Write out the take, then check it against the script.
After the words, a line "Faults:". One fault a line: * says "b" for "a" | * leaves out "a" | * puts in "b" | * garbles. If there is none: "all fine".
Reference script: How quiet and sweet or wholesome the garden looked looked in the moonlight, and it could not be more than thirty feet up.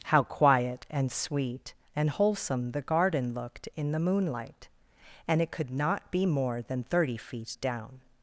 How quiet and sweet and wholesome the garden looked in the moonlight, and it could not be more than thirty feet down.
Faults:
* says "and" for "or"
* leaves out "looked"
* says "down" for "up"